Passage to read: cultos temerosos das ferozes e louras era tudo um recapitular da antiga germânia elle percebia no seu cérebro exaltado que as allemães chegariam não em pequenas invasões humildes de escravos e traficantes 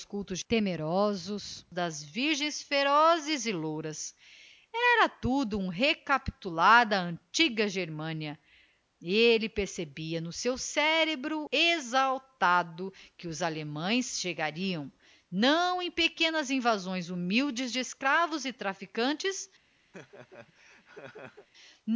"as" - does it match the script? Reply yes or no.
no